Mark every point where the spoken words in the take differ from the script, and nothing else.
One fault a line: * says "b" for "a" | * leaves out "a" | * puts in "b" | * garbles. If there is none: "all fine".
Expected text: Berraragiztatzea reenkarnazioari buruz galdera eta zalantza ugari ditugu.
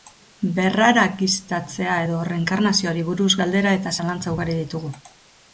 * puts in "edo"